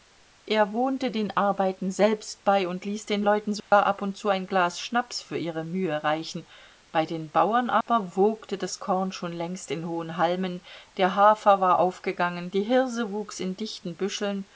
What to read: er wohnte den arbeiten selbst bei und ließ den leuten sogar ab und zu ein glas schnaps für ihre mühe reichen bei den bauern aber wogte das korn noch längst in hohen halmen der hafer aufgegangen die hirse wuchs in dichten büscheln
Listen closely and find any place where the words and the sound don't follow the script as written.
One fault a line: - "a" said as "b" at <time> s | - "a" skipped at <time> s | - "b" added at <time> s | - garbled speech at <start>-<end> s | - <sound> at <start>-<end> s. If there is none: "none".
- dropout at 3.6-3.7 s
- dropout at 7.8-7.9 s
- "noch" said as "schon" at 9.1 s
- "war" added at 11.6 s